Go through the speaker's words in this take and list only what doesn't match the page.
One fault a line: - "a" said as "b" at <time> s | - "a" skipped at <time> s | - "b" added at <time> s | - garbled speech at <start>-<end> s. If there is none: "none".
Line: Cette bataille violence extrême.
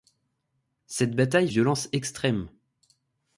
none